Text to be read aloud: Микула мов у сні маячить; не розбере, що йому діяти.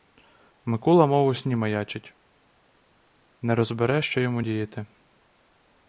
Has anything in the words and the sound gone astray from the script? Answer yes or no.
no